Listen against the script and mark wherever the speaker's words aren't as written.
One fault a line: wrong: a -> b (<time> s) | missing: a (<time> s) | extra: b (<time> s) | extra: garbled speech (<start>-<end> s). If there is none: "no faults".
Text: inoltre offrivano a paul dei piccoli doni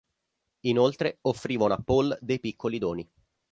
no faults